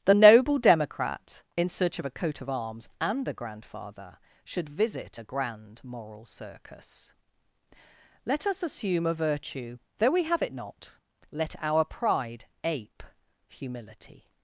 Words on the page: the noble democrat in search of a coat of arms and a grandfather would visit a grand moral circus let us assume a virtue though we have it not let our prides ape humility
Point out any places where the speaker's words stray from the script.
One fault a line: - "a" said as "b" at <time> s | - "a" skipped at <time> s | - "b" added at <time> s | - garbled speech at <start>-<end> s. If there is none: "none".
- "would" said as "should" at 4.4 s
- "prides" said as "pride" at 11.8 s